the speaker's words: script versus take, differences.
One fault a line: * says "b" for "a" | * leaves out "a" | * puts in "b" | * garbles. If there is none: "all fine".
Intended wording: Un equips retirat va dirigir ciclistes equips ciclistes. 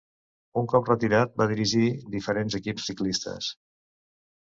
* says "cop" for "equips"
* says "diferents" for "ciclistes"